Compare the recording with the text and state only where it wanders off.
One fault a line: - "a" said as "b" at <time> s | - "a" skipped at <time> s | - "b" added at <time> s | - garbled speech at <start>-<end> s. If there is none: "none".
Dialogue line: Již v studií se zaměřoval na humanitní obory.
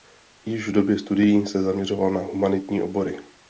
- "době" added at 0.7 s